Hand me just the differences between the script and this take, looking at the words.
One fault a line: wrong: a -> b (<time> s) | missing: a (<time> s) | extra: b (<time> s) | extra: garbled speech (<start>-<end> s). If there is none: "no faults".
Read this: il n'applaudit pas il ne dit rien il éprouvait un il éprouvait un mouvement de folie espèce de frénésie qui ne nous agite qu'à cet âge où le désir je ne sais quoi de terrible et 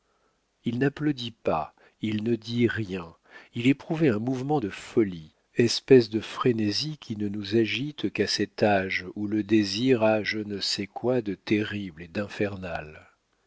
missing: il éprouvait un (4.2 s)
extra: a (10.0 s)